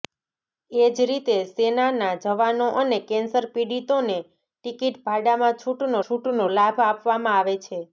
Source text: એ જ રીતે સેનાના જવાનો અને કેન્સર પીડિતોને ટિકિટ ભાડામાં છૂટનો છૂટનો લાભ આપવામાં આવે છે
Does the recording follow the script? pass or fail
pass